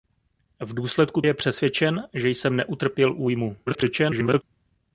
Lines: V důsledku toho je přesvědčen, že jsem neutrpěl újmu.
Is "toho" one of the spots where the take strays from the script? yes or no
yes